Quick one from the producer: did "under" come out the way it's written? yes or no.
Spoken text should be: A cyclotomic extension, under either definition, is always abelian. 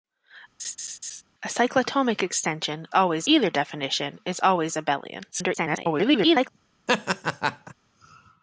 no